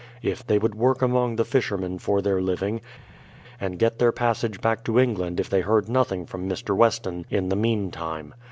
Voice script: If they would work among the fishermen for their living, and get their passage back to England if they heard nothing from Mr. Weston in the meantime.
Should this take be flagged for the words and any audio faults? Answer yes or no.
no